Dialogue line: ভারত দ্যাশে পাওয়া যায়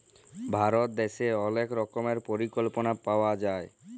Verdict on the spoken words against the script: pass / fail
fail